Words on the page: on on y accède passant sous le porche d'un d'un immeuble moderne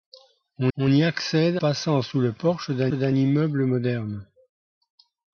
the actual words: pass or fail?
pass